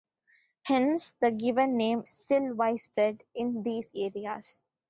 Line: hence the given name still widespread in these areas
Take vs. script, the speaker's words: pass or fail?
pass